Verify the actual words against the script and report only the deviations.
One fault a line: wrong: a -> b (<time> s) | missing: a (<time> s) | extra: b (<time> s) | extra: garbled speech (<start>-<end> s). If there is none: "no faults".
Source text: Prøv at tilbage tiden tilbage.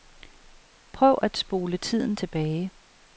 wrong: tilbage -> spole (1.4 s)